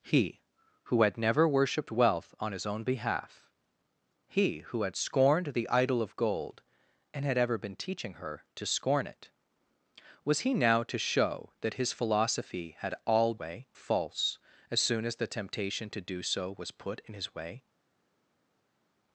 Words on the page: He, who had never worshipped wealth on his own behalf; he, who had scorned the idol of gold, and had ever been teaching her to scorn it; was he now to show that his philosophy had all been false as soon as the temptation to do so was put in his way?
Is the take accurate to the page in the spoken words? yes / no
no